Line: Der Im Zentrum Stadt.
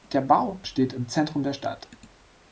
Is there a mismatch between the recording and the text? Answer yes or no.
yes